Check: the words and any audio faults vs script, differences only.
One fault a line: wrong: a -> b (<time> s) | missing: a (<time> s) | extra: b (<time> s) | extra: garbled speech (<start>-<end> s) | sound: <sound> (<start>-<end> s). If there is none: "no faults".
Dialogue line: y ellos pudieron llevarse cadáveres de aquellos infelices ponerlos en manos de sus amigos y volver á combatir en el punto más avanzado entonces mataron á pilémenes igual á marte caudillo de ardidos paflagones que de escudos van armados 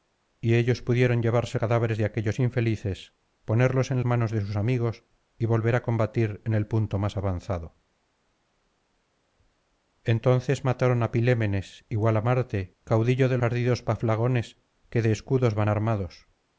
no faults